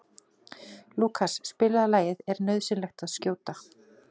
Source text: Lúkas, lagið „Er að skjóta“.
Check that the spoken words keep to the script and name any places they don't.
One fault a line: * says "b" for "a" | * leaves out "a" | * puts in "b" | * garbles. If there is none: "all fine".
* puts in "spilaðu"
* puts in "nauðsynlegt"